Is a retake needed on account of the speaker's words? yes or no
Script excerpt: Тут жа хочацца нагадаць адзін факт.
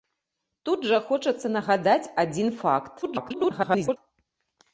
yes